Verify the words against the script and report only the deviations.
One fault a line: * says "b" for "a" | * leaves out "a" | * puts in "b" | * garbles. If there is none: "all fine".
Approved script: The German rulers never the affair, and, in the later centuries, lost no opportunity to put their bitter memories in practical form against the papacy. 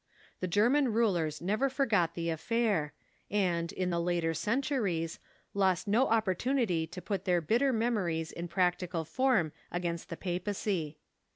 * puts in "forgot"